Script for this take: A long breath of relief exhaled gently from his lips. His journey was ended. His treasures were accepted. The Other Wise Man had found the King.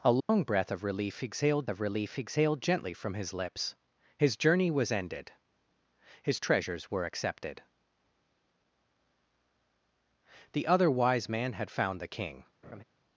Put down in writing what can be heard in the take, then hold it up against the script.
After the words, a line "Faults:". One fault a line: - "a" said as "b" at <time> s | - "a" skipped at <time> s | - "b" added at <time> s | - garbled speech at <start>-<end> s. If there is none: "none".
A long breath of relief exhaled of relief exhaled gently from his lips. His journey was ended. His treasures were accepted. The Other Wise Man had found the King.
Faults:
- "of relief exhaled" added at 1.7 s